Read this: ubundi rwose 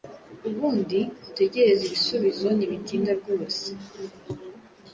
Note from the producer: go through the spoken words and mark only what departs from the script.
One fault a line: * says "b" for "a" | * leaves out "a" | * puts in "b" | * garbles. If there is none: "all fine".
* puts in "utegereze ibisubizo ntibitinda"